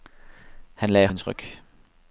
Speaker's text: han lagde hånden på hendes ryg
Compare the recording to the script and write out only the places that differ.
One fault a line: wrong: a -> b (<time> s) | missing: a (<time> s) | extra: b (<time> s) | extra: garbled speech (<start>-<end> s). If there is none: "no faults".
missing: hånden på (1.1 s)